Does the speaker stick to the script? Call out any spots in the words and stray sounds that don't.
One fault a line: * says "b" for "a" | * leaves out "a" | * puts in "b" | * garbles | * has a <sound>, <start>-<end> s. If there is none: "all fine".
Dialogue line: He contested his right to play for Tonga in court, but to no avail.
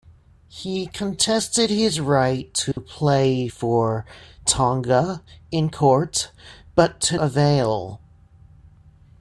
* has a dropout, 2.7-2.8 s
* leaves out "no"